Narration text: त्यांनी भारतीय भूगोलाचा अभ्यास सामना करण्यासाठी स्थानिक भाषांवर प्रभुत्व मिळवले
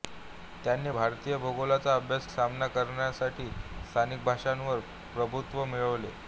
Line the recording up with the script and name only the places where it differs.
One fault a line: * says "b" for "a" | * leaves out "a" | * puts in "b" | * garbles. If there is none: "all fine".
all fine